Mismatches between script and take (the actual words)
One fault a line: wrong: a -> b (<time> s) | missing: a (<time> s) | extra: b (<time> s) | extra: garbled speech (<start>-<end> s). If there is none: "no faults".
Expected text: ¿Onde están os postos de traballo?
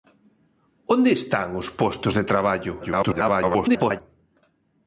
extra: garbled speech (2.8-4.0 s)